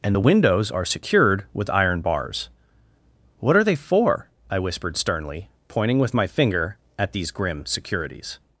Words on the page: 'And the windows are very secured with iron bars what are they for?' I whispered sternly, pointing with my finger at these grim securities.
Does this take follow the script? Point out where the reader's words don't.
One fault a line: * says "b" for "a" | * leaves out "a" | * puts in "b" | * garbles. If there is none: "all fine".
* leaves out "very"